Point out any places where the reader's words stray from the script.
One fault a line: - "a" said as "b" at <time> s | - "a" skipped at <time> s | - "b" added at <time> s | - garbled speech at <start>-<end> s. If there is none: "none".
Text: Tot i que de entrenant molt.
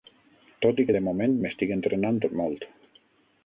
- "moment m'estic" added at 1.1 s